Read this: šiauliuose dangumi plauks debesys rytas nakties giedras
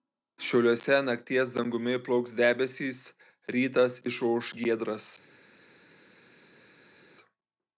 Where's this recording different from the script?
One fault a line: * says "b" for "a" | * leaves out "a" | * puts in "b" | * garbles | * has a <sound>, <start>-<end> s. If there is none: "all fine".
* puts in "nakties"
* says "išauš" for "nakties"